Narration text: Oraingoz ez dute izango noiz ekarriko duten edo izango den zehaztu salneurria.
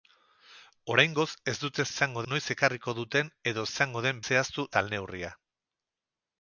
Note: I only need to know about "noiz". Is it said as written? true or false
true